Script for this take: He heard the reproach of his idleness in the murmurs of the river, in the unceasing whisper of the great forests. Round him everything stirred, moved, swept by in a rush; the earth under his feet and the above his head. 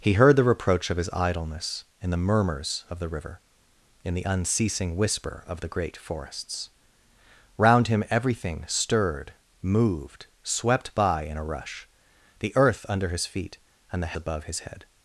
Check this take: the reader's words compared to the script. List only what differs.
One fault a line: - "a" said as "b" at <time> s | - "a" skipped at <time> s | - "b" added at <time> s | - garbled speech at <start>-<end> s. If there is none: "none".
none